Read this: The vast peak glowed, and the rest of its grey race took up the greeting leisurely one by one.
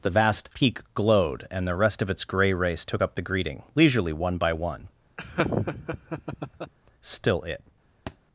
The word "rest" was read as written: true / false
true